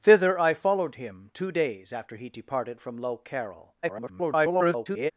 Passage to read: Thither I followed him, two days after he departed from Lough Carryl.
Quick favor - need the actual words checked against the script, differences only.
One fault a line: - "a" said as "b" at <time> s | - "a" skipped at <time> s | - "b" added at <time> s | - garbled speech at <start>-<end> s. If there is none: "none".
- garbled speech at 3.8-5.1 s